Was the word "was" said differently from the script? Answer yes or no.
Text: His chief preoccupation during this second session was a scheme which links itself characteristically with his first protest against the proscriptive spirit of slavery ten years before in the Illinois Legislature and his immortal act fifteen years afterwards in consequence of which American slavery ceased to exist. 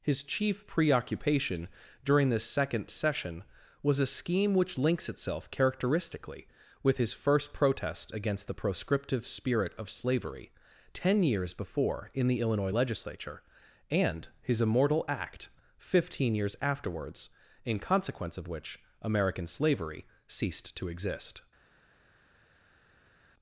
no